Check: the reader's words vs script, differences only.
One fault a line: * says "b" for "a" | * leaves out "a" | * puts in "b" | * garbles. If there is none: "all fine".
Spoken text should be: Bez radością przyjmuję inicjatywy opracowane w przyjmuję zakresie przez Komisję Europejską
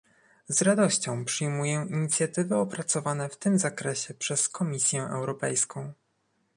* says "Z" for "Bez"
* says "tym" for "przyjmuję"